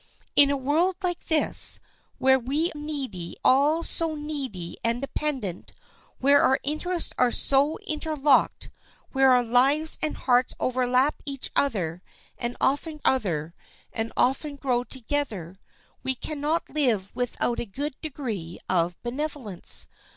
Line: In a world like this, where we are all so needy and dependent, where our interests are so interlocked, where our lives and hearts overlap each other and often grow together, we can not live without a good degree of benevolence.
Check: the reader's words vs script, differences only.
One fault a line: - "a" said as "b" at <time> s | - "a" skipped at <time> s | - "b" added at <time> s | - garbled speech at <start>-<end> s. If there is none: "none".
- "are" said as "needy" at 2.7 s
- "other and often" added at 13.0 s